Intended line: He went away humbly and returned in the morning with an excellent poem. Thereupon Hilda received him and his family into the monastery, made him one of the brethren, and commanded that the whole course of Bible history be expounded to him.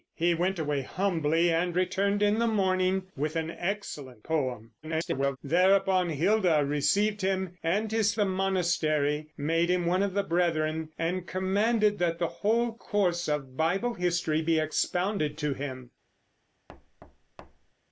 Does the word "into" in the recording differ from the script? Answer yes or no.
yes